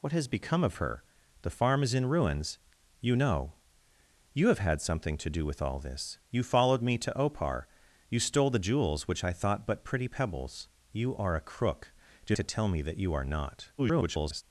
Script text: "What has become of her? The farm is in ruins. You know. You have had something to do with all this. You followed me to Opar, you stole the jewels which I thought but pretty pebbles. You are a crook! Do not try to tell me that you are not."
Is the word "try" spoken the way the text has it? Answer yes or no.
no